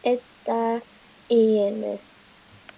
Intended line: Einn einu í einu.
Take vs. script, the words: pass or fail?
fail